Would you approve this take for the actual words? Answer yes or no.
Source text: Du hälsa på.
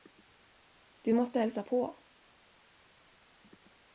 no